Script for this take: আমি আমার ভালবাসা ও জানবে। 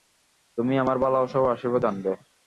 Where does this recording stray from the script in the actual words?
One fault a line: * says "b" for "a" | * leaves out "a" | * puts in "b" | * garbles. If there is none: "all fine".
* says "তুমি" for "আমি"
* puts in "আশীর্বাদ"